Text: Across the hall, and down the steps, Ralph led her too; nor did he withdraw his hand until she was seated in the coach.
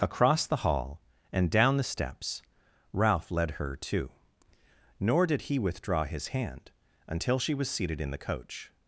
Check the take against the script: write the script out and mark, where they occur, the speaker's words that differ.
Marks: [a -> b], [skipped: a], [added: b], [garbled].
Across the hall, and down the steps, Ralph led her too; nor did he withdraw his hand until she was seated in the coach.